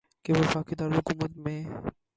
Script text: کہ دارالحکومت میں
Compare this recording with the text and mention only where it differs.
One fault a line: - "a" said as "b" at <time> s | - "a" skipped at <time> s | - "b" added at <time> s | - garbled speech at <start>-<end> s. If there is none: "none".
- "وفاقی" added at 0.4 s